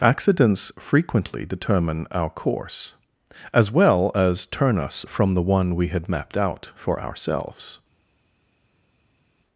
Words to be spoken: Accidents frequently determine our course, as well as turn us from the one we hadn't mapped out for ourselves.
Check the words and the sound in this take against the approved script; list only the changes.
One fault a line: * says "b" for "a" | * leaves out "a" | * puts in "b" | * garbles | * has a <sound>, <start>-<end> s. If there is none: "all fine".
* says "had" for "hadn't"